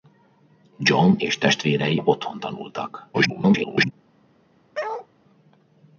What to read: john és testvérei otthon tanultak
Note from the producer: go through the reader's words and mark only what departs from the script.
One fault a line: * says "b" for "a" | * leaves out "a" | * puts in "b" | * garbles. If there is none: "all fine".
* garbles